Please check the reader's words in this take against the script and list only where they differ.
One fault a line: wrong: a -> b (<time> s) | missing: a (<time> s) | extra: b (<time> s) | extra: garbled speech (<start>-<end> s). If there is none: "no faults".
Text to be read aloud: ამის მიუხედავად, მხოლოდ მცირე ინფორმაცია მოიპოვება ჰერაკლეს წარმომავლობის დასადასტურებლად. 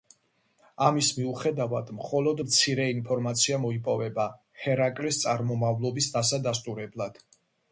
no faults